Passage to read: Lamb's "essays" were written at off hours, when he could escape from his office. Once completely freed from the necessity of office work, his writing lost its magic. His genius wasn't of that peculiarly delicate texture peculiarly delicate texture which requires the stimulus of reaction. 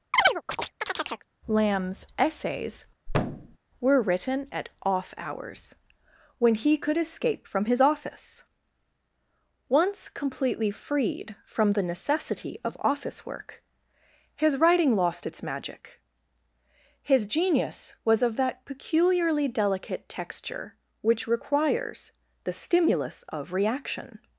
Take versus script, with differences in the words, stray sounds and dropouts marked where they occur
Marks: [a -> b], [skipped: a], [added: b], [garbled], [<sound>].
[chirp] Lamb's "essays" [thud] were written at off hours, when he could escape from his office. Once completely freed from the necessity of office work, his writing lost its magic. His genius [wasn't -> was] of that peculiarly delicate texture [skipped: peculiarly delicate texture] which requires the stimulus of reaction.